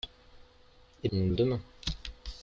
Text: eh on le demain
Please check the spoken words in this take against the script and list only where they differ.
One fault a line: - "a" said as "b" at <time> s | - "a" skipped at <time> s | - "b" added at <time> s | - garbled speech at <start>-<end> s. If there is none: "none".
none